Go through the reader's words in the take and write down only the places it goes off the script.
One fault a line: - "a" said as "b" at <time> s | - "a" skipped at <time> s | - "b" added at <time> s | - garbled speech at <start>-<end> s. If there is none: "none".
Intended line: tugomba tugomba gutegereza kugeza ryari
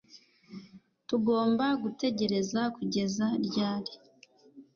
- "tugomba" skipped at 1.6 s